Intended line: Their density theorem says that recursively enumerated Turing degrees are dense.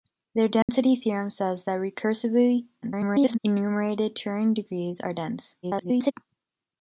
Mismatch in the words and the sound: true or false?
true